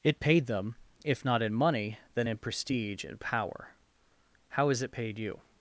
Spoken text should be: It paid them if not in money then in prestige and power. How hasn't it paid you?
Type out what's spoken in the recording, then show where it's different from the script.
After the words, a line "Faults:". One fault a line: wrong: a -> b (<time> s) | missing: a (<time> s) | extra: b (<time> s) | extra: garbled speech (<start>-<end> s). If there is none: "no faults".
It paid them if not in money then in prestige and power. How has it paid you?
Faults:
wrong: hasn't -> has (4.7 s)